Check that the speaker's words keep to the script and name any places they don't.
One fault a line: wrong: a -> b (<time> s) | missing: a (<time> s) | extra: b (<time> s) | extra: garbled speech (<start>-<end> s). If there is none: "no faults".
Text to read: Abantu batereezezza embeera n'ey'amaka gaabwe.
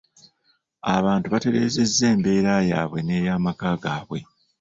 extra: yaabwe (2.7 s)